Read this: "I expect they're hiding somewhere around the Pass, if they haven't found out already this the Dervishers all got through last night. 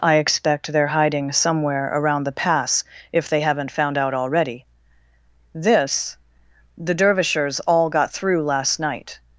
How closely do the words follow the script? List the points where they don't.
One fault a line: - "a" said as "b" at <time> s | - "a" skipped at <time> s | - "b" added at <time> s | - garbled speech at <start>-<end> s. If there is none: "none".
none